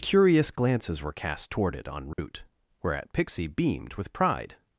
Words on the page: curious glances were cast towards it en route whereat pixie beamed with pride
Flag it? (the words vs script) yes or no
yes